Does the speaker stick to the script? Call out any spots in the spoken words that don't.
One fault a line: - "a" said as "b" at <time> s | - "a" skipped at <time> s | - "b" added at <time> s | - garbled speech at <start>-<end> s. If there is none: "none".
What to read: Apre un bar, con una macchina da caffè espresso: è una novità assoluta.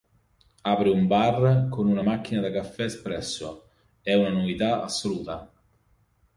none